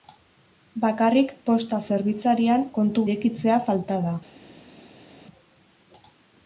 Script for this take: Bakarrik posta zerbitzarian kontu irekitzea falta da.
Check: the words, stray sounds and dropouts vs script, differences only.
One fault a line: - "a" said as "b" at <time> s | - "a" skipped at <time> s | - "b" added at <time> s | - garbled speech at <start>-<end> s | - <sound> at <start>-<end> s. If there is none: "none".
none